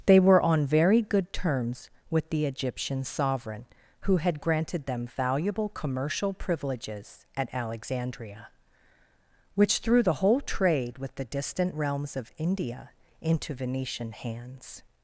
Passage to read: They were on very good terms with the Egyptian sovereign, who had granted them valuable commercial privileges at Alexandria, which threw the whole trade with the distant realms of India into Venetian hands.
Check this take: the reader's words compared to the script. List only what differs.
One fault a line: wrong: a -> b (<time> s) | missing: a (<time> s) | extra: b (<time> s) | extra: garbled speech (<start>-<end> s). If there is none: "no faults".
no faults